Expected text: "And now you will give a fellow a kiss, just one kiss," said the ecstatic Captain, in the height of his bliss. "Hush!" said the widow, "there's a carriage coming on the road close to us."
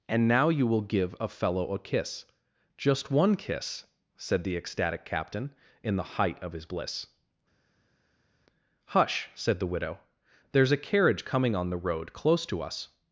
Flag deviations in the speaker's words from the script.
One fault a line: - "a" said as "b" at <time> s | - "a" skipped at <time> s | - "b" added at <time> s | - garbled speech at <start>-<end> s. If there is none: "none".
none